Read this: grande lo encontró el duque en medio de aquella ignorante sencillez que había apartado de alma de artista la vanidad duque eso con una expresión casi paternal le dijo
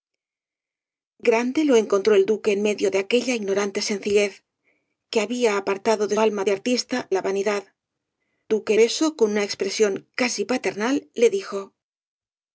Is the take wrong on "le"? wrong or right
right